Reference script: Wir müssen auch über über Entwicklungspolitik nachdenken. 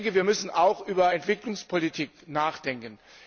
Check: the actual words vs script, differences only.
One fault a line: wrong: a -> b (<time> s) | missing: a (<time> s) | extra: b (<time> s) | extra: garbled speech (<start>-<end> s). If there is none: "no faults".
missing: über (1.1 s)